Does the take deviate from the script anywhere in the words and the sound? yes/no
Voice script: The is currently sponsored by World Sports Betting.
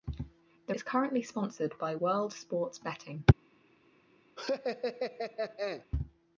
yes